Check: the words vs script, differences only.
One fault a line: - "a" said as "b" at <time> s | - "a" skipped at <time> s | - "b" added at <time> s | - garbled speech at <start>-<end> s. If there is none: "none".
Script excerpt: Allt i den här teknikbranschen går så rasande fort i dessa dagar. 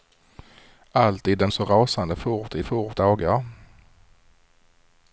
- "här teknikbranschen går" skipped at 1.5 s
- "dessa" said as "fort" at 2.6 s